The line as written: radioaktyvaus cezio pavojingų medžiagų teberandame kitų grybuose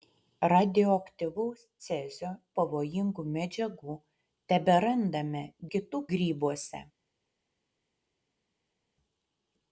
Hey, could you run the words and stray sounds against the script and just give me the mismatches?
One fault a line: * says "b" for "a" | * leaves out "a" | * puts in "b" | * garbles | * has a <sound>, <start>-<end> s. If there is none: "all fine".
all fine